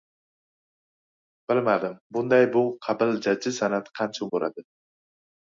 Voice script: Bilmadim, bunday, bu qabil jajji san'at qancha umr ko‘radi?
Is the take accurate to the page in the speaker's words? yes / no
no